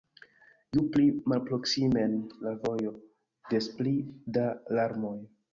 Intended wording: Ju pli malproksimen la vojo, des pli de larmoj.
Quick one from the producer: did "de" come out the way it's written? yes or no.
no